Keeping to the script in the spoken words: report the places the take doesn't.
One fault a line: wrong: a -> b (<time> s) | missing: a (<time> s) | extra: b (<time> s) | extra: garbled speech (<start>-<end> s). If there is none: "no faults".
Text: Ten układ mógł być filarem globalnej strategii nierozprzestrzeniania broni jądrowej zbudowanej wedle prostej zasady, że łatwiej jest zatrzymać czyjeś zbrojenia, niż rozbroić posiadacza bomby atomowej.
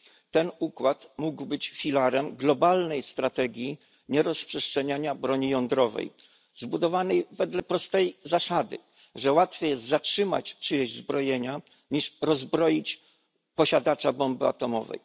no faults